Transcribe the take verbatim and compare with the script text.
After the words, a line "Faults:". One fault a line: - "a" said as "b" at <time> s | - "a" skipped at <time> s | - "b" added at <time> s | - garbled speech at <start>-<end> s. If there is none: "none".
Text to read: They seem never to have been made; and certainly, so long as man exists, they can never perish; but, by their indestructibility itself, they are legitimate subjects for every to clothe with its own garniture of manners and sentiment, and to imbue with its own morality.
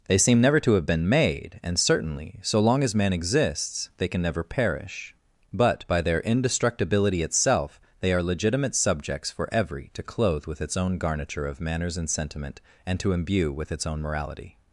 They seem never to have been made; and certainly, so long as man exists, they can never perish; but, by their indestructibility itself, they are legitimate subjects for every to clothe with its own garniture of manners and sentiment, and to imbue with its own morality.
Faults:
none